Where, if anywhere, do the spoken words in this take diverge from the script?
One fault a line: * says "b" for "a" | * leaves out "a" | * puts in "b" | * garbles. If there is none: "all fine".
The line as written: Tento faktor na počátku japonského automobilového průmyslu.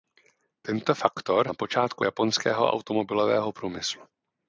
all fine